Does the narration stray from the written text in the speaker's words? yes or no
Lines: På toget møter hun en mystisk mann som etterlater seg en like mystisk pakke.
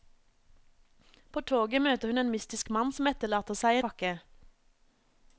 yes